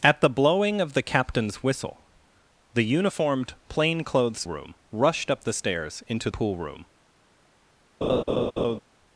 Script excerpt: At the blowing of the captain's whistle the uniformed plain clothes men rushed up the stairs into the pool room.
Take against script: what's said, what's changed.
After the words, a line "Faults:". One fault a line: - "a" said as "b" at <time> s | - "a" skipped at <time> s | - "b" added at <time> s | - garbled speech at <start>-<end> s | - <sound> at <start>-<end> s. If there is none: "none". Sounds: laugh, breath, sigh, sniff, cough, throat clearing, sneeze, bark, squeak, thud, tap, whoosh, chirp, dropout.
At the blowing of the captain's whistle the uniformed plain clothes room rushed up the stairs into pool room.
Faults:
- "men" said as "room" at 4.5 s
- "the" skipped at 6.3 s
- laugh at 8.0-8.8 s